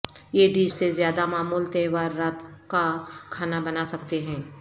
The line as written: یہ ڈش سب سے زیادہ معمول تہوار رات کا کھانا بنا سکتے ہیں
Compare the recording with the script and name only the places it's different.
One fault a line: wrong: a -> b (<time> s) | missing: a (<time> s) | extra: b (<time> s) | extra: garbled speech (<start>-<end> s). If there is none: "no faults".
missing: سب (0.7 s)